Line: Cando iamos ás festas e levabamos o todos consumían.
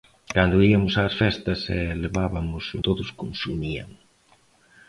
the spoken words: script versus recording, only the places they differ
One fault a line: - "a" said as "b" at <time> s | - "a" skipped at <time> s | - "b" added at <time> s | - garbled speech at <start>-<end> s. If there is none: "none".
none